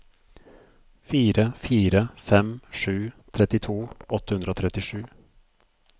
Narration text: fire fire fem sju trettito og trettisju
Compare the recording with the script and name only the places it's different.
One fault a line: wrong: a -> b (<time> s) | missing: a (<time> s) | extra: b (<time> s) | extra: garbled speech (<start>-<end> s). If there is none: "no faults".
extra: åtte hundre (4.2 s)